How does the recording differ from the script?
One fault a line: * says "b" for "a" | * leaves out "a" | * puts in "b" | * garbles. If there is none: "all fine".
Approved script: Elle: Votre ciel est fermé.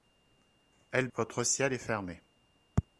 all fine